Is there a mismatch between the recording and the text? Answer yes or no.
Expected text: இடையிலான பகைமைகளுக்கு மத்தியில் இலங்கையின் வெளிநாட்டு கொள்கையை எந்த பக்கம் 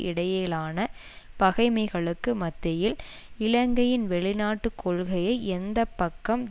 no